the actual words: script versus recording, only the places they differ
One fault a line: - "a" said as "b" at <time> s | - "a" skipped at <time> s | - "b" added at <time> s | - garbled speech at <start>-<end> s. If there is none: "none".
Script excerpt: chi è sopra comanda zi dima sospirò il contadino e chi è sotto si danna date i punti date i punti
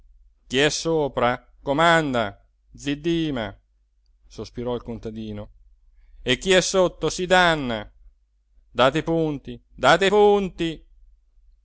none